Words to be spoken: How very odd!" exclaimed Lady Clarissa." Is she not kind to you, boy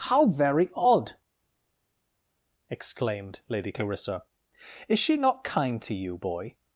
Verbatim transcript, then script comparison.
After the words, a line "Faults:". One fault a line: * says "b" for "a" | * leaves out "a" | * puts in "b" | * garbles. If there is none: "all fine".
How very odd!" exclaimed Lady Clarissa." Is she not kind to you, boy
Faults:
all fine